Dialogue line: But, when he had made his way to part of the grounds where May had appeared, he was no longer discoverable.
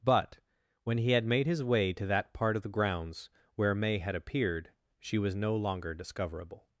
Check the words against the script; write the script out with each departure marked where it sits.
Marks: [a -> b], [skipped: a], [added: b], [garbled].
But, when he had made his way to [added: that] part of the grounds where May had appeared, [he -> she] was no longer discoverable.